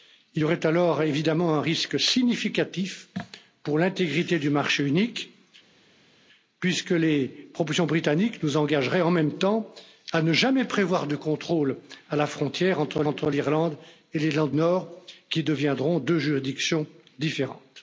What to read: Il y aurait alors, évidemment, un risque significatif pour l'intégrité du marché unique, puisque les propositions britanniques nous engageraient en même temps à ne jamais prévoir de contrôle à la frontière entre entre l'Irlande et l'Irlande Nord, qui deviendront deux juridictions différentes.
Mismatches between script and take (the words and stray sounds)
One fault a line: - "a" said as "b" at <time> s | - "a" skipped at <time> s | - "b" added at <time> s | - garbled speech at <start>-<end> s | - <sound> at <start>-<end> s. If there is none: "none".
none